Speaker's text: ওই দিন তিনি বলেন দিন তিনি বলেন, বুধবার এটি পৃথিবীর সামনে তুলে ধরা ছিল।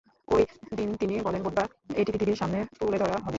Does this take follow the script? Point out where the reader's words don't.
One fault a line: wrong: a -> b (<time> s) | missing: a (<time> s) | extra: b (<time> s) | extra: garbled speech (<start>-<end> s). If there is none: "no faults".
missing: দিন তিনি বলেন (1.4 s)
wrong: ছিল -> হবে (3.1 s)